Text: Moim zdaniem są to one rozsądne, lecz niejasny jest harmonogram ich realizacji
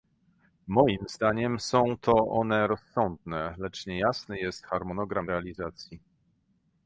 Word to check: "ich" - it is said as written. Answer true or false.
false